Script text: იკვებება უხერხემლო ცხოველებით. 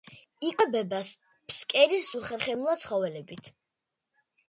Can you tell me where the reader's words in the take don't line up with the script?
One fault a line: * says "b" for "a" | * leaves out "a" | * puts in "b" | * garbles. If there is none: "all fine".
* puts in "ფსკერის"